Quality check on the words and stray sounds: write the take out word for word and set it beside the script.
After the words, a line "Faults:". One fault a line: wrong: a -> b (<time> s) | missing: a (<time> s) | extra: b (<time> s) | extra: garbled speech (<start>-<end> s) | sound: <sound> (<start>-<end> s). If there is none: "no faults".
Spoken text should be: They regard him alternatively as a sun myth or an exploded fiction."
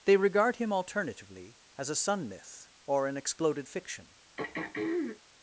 They regard him alternatively as a sun myth or an exploded fiction."
Faults:
sound: throat clearing (4.4-5.2 s)